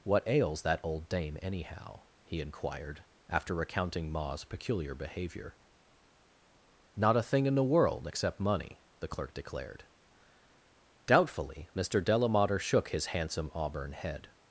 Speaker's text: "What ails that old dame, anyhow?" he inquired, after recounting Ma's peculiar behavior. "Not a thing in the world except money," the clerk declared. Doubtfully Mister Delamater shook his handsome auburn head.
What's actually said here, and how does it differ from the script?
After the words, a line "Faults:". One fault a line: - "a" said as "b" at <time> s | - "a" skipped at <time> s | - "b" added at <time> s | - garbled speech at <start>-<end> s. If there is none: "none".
"What ails that old dame, anyhow?" he inquired, after recounting Ma's peculiar behavior. "Not a thing in the world except money," the clerk declared. Doubtfully Mister Delamater shook his handsome auburn head.
Faults:
none